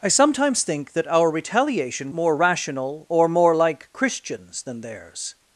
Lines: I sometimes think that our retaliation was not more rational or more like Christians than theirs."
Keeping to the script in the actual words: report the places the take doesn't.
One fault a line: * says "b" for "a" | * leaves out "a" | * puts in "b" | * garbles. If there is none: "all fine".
* leaves out "was not"